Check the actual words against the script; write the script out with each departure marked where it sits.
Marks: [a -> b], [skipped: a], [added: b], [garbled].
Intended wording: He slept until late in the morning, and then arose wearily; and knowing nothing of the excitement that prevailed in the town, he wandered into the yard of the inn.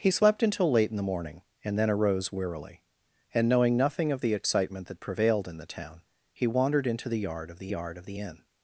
He slept until late in the morning, and then arose wearily; and knowing nothing of the excitement that prevailed in the town, he wandered into the yard of the [added: yard of the] inn.